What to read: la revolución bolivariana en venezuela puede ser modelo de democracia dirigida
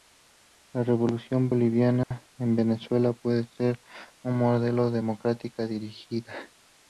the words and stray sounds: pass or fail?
fail